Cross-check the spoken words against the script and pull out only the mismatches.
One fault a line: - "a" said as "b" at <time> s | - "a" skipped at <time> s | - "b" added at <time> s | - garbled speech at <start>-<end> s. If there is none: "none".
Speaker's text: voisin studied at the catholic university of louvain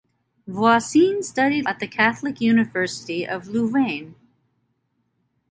none